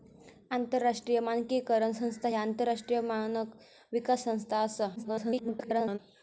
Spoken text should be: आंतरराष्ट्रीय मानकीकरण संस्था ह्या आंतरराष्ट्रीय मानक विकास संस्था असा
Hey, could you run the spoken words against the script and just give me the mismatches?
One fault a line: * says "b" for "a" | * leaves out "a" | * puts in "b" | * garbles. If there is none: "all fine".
* garbles